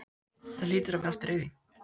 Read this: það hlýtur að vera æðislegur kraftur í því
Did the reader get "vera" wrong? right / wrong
wrong